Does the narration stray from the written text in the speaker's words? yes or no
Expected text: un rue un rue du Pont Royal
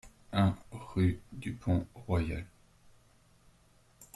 yes